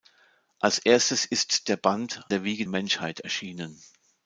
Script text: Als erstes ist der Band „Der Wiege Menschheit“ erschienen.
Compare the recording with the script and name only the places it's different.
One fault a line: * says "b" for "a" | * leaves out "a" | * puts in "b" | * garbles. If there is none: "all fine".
all fine